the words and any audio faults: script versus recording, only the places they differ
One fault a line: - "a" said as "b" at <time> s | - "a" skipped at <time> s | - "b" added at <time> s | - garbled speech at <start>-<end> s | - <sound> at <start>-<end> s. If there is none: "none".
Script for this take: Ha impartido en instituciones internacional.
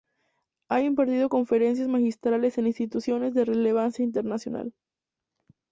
- "conferencias magistrales" added at 1.3 s
- "de relevancia" added at 3.3 s